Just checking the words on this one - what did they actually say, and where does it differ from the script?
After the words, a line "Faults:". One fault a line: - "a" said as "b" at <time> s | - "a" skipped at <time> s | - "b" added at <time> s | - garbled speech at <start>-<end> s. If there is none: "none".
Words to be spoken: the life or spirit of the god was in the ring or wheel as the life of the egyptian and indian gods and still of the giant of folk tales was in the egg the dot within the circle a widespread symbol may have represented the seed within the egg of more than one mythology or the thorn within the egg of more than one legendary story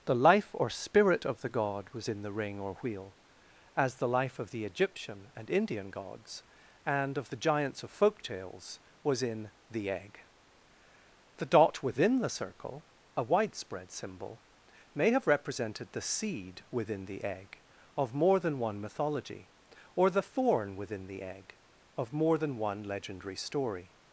the life or spirit of the god was in the ring or wheel as the life of the egyptian and indian gods and of the giants of folk tales was in the egg the dot within the circle a widespread symbol may have represented the seed within the egg of more than one mythology or the thorn within the egg of more than one legendary story
Faults:
- "still" skipped at 7.2 s
- "giant" said as "giants" at 7.3 s